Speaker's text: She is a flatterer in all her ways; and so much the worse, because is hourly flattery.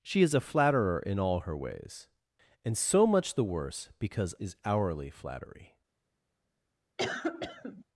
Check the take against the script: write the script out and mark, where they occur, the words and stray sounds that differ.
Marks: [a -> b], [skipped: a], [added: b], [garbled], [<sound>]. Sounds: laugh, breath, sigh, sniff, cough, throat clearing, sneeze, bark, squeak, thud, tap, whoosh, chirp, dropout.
She is a flatterer in all her ways; and so much the worse, because is hourly flattery. [cough]